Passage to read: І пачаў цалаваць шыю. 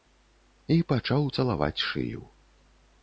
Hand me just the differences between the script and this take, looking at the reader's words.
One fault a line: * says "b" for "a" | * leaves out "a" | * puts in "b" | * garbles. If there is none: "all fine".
all fine